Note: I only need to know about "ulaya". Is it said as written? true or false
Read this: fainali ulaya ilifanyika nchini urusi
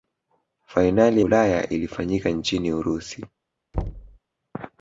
true